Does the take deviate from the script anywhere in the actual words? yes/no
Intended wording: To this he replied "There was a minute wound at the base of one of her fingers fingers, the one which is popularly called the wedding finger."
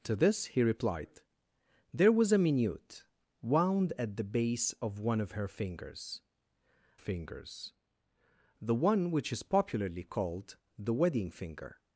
no